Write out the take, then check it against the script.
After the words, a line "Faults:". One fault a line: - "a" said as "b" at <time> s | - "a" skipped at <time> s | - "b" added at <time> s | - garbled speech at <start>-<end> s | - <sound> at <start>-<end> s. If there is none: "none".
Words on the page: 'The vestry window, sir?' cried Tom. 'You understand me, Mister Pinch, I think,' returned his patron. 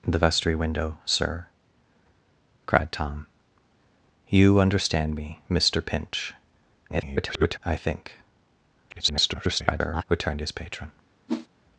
'The vestry window, sir?' cried Tom. 'You understand me, Mister Pinch, [garbled] I think,' [garbled] returned his patron.
Faults:
- garbled speech at 6.9-7.6 s
- garbled speech at 8.9-10.0 s
- whoosh at 11.3-11.5 s